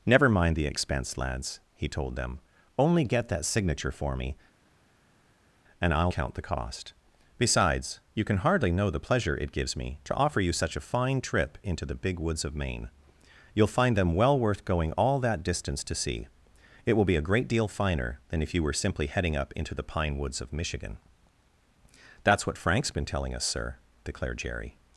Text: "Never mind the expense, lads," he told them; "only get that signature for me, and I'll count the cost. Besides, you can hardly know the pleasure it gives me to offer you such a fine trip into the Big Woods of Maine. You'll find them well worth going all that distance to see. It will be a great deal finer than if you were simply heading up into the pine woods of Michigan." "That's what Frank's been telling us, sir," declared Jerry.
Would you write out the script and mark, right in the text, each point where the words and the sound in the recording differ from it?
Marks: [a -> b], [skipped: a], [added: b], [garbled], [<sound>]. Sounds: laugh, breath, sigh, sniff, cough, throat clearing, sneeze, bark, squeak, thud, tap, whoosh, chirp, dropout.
"Never mind the expense, lads," he told them; "only get that signature for me, and I'll count the cost. Besides, you can hardly know the pleasure it gives me to offer you such a fine trip into the Big Woods of Maine. You'll find them well worth going all that distance to see. It will be a great deal finer than if you were simply heading up into the pine woods of Michigan." "That's what Frank's been telling us, sir," declared Jerry.